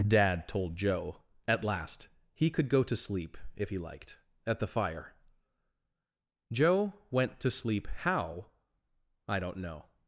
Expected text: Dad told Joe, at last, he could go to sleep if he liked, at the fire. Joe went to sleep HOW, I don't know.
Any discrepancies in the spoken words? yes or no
no